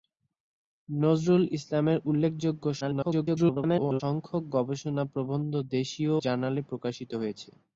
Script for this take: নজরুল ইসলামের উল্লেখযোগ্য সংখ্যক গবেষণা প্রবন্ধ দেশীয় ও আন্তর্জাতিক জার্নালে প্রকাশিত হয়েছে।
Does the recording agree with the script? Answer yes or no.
no